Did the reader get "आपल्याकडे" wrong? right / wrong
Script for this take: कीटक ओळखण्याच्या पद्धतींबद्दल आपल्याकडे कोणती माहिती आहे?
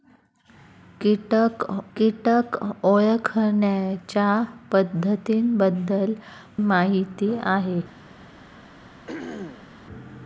wrong